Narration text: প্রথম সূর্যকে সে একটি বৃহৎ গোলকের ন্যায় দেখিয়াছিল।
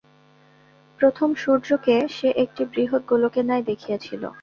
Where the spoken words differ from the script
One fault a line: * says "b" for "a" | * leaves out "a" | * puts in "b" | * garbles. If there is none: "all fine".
all fine